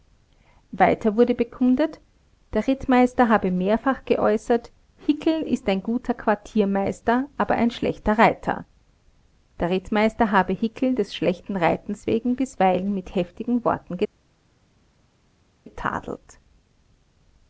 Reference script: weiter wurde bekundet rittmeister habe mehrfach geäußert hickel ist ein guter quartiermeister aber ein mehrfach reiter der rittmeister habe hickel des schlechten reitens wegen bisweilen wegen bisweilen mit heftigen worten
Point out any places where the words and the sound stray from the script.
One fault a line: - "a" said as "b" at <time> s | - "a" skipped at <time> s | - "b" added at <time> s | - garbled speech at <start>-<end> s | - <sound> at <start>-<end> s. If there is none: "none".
- "der" added at 2.5 s
- "mehrfach" said as "schlechter" at 7.7 s
- "wegen bisweilen" skipped at 12.9 s